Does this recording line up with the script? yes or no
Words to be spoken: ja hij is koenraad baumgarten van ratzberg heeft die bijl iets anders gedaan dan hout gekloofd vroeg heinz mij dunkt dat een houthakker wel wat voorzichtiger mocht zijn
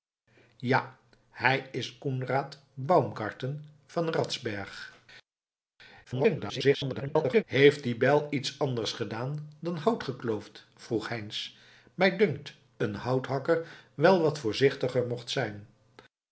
no